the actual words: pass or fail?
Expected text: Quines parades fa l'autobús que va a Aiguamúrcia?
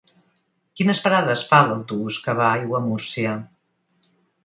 pass